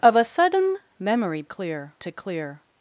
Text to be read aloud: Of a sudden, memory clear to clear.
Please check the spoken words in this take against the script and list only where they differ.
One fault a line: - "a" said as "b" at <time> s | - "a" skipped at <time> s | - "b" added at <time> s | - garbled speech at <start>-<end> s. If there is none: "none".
none